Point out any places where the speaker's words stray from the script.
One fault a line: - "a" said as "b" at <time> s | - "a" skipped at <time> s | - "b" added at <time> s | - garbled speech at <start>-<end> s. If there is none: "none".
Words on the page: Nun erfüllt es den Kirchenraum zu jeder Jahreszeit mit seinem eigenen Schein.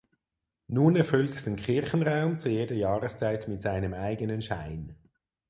none